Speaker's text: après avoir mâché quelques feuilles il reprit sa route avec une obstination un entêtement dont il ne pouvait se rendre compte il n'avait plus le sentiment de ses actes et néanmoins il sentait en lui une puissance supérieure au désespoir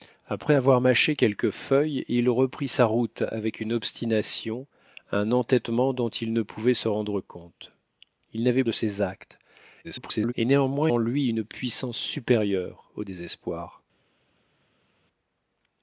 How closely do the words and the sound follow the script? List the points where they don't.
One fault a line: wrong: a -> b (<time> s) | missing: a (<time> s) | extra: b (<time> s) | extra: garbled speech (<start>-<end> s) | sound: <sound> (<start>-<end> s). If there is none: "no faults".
missing: plus le sentiment (8.6 s)
extra: garbled speech (9.8-10.3 s)
missing: il sentait (10.9 s)